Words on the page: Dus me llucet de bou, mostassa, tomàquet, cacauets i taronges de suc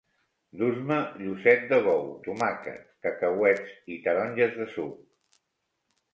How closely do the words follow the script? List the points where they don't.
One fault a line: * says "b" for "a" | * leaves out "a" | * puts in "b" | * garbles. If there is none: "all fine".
* leaves out "mostassa"